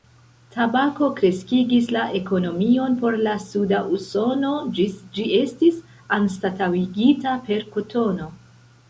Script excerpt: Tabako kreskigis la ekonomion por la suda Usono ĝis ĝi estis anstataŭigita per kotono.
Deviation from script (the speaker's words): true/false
false